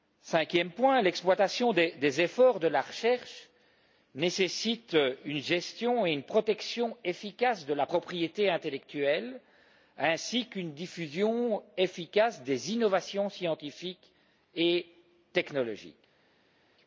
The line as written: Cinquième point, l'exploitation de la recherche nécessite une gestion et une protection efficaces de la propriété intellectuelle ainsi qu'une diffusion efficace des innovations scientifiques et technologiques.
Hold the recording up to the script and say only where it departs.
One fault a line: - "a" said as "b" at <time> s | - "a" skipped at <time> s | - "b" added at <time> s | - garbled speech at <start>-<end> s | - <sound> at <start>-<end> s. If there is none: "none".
- "des efforts" added at 1.7 s